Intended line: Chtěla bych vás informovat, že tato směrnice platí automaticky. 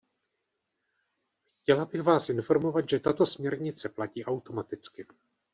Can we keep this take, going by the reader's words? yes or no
yes